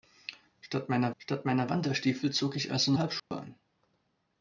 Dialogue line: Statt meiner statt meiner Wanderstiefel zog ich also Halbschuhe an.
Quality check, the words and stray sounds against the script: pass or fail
fail